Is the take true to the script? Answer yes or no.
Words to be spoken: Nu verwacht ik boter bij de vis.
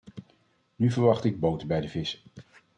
yes